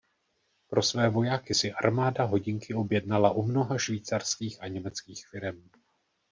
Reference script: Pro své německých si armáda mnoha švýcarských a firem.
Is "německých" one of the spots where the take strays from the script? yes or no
yes